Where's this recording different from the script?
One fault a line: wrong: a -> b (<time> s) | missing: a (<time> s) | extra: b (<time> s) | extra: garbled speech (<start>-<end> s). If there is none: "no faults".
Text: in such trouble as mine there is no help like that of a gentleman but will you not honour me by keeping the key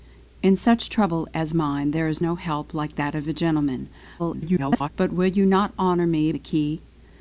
extra: garbled speech (4.2-4.9 s)
missing: by keeping (6.3 s)